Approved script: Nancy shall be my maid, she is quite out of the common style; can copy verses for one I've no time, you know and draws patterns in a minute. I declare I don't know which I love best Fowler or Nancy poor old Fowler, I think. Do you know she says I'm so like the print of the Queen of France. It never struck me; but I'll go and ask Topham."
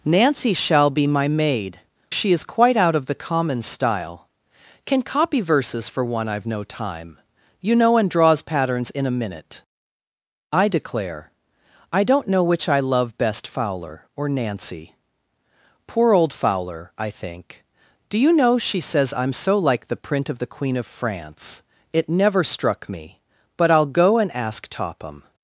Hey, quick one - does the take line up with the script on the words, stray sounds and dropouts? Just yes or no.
yes